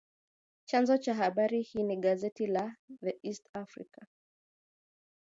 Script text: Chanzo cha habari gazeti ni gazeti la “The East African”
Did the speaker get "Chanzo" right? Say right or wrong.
right